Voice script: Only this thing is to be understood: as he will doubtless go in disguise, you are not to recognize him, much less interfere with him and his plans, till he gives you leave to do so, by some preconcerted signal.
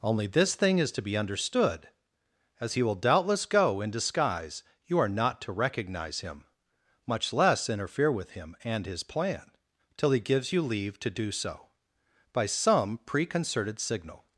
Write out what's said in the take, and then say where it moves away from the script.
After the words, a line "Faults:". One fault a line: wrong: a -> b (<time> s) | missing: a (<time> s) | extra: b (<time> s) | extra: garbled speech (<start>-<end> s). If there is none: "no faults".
Only this thing is to be understood: as he will doubtless go in disguise, you are not to recognize him, much less interfere with him and his plan, till he gives you leave to do so, by some preconcerted signal.
Faults:
wrong: plans -> plan (9.0 s)